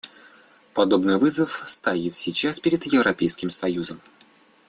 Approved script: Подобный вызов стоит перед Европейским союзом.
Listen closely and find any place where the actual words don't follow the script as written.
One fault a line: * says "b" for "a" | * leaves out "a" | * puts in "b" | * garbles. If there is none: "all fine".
* puts in "сейчас"